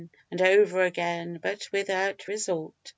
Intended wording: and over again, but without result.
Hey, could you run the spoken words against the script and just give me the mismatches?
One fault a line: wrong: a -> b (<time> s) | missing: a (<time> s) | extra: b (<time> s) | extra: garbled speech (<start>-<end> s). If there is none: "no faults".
no faults